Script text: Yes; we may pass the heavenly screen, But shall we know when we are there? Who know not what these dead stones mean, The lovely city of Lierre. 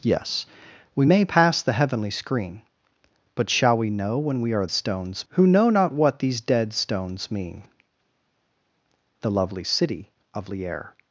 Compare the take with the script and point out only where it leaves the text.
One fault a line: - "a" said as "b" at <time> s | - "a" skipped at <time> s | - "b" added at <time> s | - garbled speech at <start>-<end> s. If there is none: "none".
- "there" said as "stones" at 4.7 s